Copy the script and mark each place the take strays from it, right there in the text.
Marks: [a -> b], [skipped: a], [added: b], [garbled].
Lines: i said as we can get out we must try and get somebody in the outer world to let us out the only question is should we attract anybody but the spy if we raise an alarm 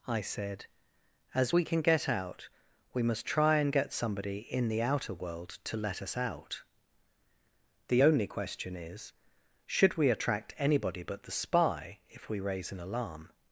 i said as we can get out we must try and get somebody in the outer world to let us out the only question is should we attract anybody but the spy if we raise an alarm